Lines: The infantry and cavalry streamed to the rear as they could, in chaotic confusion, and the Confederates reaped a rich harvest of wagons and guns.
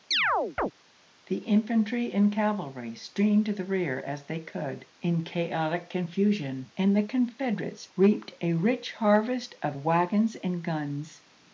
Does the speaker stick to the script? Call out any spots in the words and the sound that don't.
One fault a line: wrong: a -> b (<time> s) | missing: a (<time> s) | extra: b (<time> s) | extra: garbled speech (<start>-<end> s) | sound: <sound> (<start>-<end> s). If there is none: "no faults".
sound: chirp (0.1-0.7 s)